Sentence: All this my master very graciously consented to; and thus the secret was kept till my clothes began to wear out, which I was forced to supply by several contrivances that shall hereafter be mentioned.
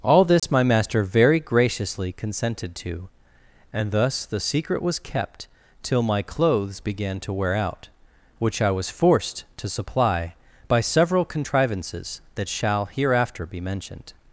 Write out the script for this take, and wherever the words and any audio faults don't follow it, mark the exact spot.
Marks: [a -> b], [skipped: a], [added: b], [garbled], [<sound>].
All this [dropout] my master very graciously consented to; and thus the secret was kept till my clothes began to wear out, which I was forced to supply by several contrivances that shall hereafter be mentioned.